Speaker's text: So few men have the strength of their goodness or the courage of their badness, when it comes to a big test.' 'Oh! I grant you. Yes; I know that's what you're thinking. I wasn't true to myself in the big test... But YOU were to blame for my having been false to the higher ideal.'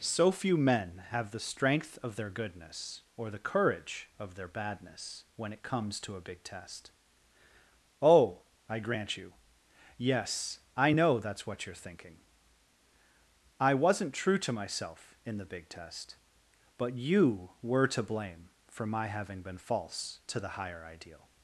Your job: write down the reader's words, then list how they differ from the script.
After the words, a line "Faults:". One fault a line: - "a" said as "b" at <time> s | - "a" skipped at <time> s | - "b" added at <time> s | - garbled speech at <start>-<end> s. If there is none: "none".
So few men have the strength of their goodness or the courage of their badness, when it comes to a big test.' 'Oh! I grant you. Yes; I know that's what you're thinking. I wasn't true to myself in the big test... But YOU were to blame for my having been false to the higher ideal.'
Faults:
none